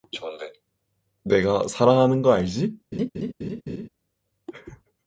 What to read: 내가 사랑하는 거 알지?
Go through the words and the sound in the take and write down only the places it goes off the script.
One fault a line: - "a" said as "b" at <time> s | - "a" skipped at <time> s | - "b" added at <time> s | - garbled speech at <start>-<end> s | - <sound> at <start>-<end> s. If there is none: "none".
- laugh at 2.9-3.9 s